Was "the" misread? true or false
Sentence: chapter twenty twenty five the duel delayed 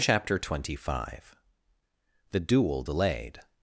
false